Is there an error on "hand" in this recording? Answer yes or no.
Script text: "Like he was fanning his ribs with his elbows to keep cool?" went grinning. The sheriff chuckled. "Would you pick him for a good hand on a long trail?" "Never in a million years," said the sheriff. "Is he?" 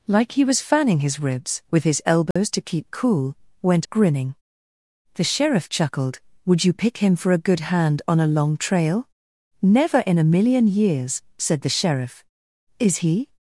no